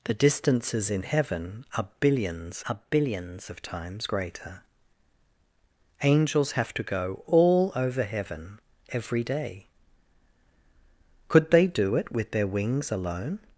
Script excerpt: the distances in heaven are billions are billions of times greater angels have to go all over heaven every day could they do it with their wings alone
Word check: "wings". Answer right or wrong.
right